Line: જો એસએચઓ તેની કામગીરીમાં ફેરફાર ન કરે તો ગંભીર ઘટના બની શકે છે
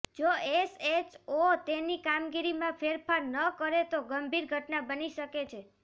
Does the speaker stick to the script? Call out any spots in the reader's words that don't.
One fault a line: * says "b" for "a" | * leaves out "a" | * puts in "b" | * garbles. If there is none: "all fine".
all fine